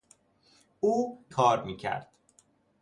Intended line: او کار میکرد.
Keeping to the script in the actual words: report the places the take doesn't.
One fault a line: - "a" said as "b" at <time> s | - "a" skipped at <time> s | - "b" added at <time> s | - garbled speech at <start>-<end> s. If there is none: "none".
none